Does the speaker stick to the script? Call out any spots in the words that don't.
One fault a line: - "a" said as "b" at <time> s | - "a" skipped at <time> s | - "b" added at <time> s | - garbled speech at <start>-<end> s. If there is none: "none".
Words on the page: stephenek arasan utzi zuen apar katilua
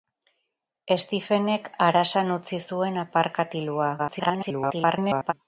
- garbled speech at 4.0-5.3 s